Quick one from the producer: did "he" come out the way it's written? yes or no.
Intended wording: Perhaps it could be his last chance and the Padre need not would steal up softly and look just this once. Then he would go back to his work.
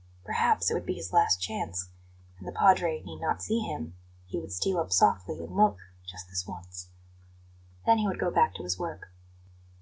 yes